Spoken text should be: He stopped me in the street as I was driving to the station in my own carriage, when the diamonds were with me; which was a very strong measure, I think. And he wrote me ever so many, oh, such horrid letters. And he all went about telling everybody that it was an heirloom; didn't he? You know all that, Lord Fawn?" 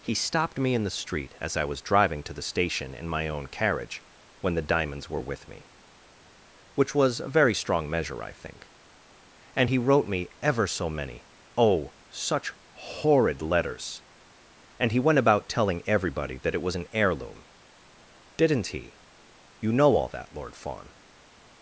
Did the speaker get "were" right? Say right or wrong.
right